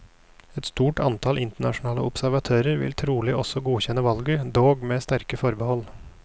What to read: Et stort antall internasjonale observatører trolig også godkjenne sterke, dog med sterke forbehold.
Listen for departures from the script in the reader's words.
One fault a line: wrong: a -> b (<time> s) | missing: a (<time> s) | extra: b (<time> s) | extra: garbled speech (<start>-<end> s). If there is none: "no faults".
extra: vil (2.8 s)
wrong: sterke -> valget (4.1 s)